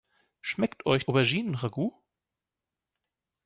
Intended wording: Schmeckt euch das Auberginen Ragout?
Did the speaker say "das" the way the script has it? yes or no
no